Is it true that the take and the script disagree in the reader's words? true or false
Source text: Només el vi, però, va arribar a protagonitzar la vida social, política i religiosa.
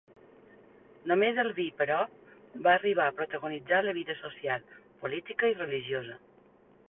false